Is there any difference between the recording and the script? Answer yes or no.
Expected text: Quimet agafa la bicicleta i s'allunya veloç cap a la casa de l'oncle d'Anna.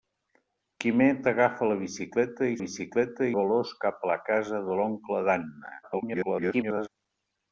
yes